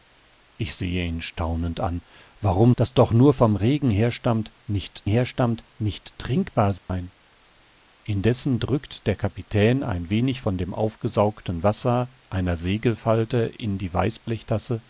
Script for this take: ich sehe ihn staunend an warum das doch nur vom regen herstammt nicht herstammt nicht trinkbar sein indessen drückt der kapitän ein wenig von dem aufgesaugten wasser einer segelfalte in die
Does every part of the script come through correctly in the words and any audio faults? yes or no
no